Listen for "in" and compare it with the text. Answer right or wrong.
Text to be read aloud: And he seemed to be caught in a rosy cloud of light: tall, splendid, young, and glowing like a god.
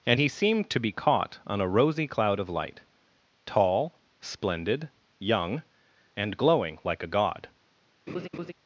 wrong